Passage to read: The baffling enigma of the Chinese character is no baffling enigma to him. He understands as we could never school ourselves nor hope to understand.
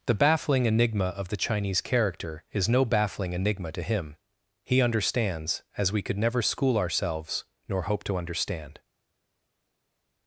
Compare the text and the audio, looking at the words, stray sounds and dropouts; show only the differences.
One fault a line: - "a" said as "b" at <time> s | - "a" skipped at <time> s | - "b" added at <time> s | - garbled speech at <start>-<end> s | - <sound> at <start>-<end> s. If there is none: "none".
none